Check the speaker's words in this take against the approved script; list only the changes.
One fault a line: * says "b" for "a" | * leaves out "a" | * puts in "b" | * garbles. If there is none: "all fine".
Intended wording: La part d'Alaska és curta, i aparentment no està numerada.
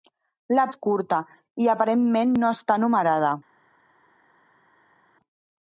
* leaves out "part d'Alaska"